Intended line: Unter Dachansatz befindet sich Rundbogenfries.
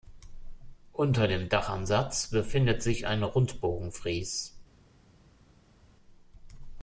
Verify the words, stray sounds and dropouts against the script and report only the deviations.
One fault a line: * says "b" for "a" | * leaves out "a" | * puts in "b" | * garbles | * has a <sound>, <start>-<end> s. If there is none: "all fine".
* puts in "dem"
* puts in "ein"